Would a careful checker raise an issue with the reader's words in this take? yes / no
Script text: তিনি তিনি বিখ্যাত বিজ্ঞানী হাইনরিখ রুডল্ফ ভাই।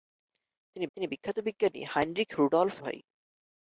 no